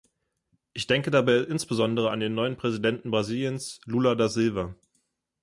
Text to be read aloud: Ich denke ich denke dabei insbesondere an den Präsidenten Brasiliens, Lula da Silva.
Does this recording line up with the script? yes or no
no